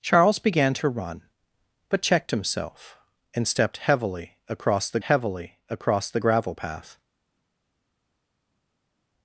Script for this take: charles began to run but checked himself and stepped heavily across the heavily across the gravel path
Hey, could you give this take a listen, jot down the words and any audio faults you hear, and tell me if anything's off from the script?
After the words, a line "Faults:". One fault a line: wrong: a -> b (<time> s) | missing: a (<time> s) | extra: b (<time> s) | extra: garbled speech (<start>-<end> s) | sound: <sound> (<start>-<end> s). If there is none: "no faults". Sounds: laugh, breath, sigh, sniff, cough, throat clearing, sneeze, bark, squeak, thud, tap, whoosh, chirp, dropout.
charles began to run but checked himself and stepped heavily across the heavily across the gravel path
Faults:
no faults